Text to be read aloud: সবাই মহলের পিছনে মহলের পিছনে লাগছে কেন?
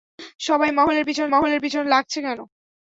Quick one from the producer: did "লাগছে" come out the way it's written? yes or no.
yes